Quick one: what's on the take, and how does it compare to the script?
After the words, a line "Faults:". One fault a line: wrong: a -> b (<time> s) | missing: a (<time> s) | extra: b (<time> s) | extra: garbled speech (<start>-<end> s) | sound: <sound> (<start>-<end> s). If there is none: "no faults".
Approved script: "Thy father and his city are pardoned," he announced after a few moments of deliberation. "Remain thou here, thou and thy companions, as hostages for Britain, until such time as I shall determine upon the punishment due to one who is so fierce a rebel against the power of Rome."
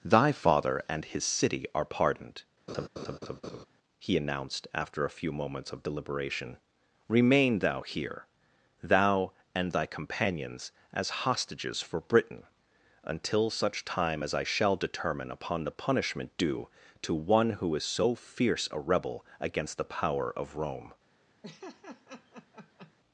"Thy father and his city are pardoned," he announced after a few moments of deliberation. "Remain thou here, thou and thy companions, as hostages for Britain, until such time as I shall determine upon the punishment due to one who is so fierce a rebel against the power of Rome."
Faults:
sound: laugh (2.7-3.7 s)
sound: laugh (21.4-22.9 s)